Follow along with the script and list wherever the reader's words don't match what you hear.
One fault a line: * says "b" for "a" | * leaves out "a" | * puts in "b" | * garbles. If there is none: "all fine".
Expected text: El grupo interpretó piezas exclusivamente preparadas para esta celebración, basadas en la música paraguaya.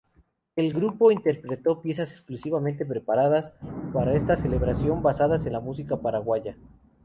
all fine